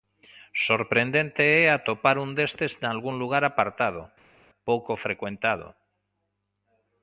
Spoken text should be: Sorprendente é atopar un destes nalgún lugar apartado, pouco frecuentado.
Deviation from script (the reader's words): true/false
false